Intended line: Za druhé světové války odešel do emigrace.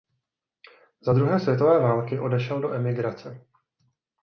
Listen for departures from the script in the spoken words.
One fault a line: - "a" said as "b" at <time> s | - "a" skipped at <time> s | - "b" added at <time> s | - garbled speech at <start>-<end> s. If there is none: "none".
none